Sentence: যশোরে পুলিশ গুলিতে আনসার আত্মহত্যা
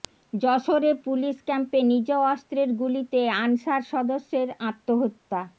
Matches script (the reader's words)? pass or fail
fail